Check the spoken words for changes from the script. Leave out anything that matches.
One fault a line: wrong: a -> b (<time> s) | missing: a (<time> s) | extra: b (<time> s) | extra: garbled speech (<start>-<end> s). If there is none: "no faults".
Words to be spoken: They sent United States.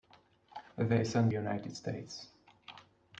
no faults